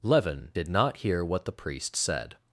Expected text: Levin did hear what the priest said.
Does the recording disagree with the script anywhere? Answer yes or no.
yes